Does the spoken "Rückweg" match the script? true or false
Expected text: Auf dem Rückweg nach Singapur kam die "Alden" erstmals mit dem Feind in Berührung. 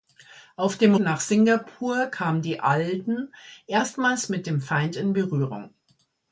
false